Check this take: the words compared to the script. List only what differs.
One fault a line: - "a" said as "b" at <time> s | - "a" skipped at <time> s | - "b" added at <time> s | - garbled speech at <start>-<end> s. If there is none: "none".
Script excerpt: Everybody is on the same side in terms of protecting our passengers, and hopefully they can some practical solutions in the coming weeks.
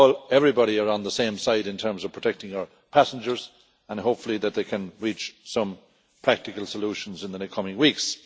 - "reach" added at 5.0 s